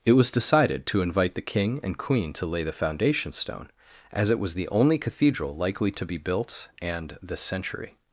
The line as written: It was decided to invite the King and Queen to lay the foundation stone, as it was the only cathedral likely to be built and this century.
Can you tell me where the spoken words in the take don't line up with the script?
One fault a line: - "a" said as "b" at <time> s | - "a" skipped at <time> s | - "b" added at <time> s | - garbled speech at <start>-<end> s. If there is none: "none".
none